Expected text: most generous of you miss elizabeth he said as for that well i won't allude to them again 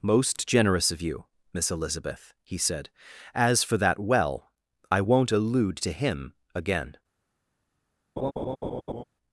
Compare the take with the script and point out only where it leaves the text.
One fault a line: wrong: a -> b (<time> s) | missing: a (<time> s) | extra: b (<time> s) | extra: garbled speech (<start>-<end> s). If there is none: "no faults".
wrong: them -> him (5.9 s)